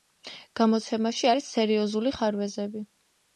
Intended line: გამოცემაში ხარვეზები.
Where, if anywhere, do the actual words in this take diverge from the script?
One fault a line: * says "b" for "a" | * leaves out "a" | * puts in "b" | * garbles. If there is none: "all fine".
* puts in "არის სერიოზული"